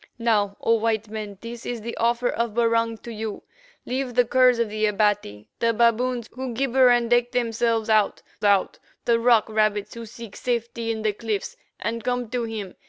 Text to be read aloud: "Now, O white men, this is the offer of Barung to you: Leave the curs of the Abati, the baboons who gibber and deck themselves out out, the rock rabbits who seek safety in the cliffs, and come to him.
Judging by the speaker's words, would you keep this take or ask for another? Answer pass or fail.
pass